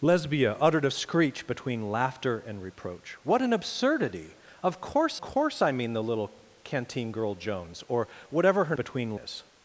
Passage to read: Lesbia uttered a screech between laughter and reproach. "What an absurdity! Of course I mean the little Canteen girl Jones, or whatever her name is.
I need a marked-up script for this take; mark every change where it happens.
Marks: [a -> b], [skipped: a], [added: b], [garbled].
Lesbia uttered a screech between laughter and reproach. "What an absurdity! Of course [added: course] I mean the little Canteen girl Jones, or whatever her [name -> between] is.